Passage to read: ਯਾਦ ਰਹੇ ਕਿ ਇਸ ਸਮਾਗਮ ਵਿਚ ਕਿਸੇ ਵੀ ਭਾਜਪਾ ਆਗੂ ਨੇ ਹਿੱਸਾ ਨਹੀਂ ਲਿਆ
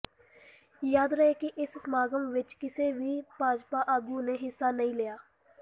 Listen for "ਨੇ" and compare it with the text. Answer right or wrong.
right